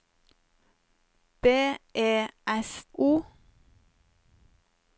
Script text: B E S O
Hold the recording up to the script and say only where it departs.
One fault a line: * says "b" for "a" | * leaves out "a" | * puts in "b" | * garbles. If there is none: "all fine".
all fine